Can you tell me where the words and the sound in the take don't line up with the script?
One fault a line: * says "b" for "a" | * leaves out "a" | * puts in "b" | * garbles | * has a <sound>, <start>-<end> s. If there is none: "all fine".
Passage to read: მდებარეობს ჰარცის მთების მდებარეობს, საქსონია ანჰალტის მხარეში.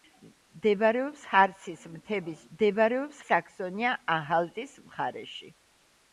all fine